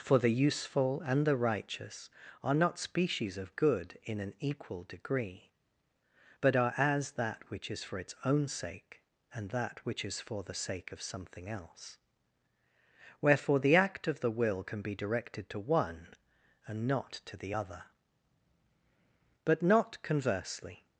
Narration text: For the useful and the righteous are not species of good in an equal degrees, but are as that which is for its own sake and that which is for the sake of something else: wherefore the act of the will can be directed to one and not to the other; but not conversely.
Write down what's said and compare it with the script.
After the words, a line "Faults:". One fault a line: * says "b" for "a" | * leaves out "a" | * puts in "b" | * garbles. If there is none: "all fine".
For the useful and the righteous are not species of good in an equal degree, but are as that which is for its own sake and that which is for the sake of something else: wherefore the act of the will can be directed to one and not to the other; but not conversely.
Faults:
* says "degree" for "degrees"